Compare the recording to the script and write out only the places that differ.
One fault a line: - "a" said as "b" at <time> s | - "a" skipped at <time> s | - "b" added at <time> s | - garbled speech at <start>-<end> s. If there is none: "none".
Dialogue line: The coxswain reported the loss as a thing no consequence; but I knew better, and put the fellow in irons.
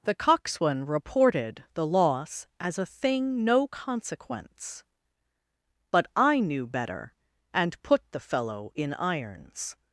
none